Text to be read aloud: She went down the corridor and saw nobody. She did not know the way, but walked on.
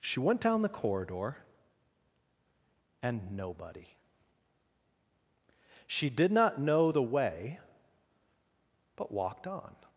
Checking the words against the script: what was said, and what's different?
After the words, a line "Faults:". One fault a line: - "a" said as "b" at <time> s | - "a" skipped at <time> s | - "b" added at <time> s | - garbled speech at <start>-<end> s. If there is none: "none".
She went down the corridor and nobody. She did not know the way, but walked on.
Faults:
- "saw" skipped at 3.4 s